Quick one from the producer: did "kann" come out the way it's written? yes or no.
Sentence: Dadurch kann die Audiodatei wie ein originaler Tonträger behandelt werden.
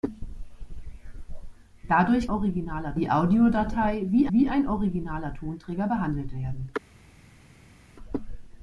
no